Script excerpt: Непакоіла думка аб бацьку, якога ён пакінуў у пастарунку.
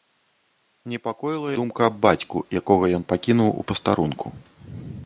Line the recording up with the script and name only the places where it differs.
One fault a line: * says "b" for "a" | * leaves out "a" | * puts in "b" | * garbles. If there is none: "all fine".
all fine